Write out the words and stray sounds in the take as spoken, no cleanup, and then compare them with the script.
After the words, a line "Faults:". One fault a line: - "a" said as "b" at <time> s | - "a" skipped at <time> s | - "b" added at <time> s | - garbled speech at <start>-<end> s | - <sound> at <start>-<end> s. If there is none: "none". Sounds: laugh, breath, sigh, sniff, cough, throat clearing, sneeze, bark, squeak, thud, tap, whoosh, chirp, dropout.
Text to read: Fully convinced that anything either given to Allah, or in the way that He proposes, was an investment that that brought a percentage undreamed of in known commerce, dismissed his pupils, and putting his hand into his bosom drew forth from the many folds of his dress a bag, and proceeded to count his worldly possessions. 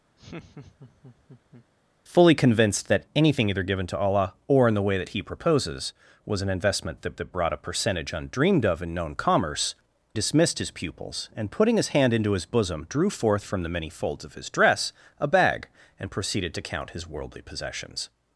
Fully convinced that anything either given to Allah, or in the way that He proposes, was an investment that that brought a percentage undreamed of in known commerce, dismissed his pupils, and putting his hand into his bosom drew forth from the many folds of his dress a bag, and proceeded to count his worldly possessions.
Faults:
- laugh at 0.2-1.7 s